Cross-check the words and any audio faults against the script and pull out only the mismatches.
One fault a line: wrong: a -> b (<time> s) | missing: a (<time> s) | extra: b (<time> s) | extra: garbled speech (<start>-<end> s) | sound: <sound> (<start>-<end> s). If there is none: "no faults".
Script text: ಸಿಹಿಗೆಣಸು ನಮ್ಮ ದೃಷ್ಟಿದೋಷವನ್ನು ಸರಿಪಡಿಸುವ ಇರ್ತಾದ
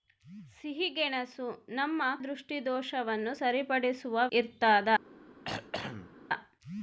sound: throat clearing (5.4-6.2 s)